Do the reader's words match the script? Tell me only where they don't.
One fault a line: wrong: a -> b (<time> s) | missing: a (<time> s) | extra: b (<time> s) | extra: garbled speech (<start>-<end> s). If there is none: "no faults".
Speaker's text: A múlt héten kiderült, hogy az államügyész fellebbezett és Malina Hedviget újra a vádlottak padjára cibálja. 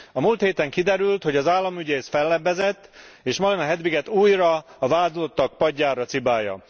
no faults